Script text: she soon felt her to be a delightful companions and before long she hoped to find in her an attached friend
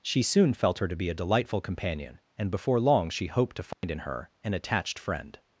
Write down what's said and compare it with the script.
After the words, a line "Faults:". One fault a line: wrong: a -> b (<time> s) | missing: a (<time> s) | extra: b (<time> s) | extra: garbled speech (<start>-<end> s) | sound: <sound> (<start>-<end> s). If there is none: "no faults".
she soon felt her to be a delightful companion and before long she hoped to find in her an attached friend
Faults:
wrong: companions -> companion (1.6 s)
sound: dropout (3.7-3.8 s)